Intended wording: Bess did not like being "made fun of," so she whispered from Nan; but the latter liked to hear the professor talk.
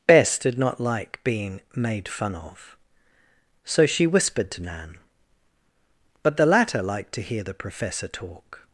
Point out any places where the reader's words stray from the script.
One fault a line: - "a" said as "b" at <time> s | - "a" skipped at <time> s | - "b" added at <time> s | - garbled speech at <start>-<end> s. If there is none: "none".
- "from" said as "to" at 4.5 s